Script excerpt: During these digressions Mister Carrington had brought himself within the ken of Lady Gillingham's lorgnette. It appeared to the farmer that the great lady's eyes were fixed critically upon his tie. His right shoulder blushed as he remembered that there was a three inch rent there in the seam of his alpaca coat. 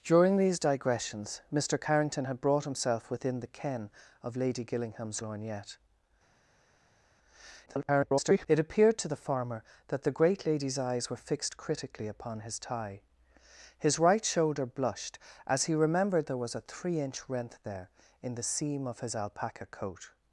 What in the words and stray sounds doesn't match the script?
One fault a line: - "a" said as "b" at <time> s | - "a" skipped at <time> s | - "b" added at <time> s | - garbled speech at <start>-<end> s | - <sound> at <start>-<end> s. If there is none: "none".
- garbled speech at 7.7-8.5 s
- "that" skipped at 16.3 s